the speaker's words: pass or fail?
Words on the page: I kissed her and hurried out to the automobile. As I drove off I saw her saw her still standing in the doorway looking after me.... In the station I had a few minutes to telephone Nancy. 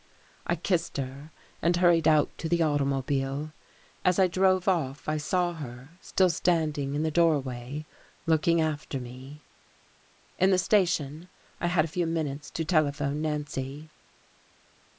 fail